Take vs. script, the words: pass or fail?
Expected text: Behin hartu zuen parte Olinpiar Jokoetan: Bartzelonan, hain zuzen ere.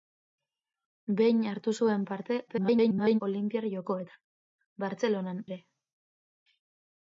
fail